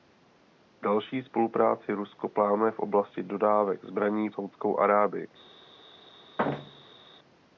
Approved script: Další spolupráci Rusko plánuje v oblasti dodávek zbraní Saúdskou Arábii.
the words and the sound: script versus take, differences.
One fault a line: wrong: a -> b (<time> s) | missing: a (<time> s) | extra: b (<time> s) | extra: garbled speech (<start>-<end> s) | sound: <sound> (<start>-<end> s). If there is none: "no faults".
sound: thud (6.4-7.0 s)